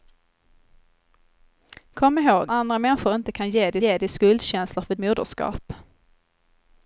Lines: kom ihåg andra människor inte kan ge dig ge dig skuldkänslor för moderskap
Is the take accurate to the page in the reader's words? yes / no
yes